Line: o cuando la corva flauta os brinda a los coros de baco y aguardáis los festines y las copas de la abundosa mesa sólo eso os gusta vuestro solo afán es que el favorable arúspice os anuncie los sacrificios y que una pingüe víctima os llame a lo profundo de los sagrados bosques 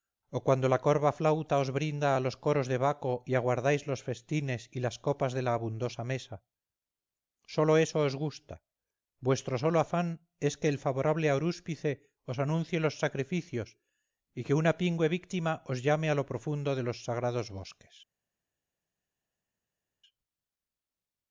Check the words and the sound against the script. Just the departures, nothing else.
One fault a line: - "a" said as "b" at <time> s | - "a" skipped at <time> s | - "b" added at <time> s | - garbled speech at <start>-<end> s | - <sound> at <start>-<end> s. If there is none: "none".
none